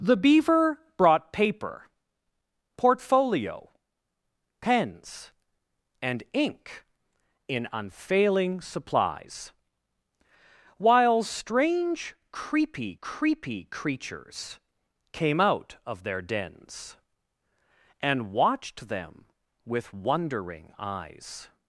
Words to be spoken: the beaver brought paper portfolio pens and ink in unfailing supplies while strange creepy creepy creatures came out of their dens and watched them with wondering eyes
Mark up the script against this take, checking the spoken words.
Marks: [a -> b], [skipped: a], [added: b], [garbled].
the beaver brought paper portfolio pens and ink in unfailing supplies while strange creepy creepy creatures came out of their dens and watched them with wondering eyes